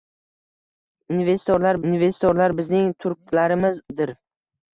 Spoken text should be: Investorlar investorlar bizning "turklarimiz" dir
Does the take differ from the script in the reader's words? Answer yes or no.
no